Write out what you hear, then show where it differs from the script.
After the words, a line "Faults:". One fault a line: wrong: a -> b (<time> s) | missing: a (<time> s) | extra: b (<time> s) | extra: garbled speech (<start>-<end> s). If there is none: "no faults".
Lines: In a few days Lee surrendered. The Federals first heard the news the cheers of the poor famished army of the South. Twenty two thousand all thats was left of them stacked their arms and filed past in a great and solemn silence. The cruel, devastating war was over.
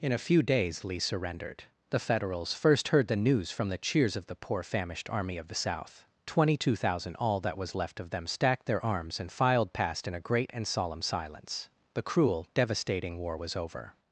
In a few days Lee surrendered. The Federals first heard the news from the cheers of the poor famished army of the South. Twenty two thousand all that was left of them stacked their arms and filed past in a great and solemn silence. The cruel, devastating war was over.
Faults:
extra: from (3.5 s)
wrong: thats -> that (7.4 s)